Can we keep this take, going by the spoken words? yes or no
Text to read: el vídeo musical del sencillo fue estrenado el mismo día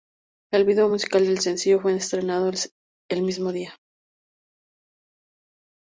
yes